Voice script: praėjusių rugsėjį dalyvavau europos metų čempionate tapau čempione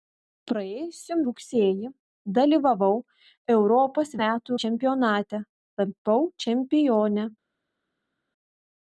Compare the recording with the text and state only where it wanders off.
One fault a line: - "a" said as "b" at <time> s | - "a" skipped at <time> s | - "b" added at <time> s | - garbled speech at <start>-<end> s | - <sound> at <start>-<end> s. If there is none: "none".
none